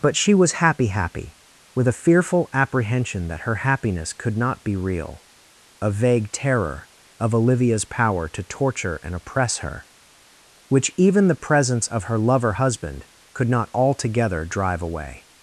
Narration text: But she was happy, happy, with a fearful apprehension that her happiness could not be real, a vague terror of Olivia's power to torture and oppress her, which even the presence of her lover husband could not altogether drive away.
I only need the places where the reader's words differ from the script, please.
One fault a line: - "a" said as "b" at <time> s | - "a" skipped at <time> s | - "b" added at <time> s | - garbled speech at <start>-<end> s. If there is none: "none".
none